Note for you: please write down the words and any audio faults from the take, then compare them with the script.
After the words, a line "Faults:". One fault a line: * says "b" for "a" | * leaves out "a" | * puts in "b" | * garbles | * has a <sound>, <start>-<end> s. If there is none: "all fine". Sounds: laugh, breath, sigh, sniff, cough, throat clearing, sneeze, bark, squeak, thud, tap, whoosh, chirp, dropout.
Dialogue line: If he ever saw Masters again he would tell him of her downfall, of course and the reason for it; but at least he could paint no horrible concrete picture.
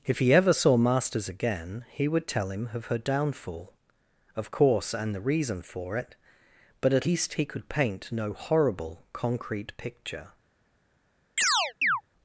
If he ever saw Masters again he would tell him of her downfall, of course and the reason for it; but at least he could paint no horrible concrete picture.
Faults:
* has a chirp, 11.4-12.0 s